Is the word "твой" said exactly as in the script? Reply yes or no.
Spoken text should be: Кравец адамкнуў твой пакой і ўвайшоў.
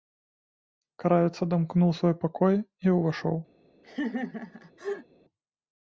no